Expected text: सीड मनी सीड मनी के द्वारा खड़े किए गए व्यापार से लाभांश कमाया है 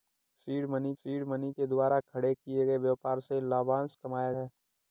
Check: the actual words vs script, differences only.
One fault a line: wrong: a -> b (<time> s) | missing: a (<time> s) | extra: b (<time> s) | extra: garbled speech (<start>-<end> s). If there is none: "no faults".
no faults